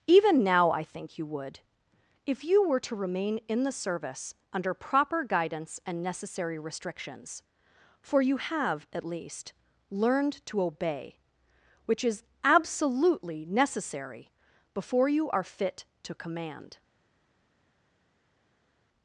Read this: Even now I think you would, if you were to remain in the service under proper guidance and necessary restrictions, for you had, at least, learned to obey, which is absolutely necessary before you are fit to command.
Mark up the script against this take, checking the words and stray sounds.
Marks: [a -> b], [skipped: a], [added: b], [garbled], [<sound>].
Even now I think you would, if you were to remain in the service under proper guidance and necessary restrictions, for you [had, -> have] at least, learned to obey, which is absolutely necessary before you are fit to command.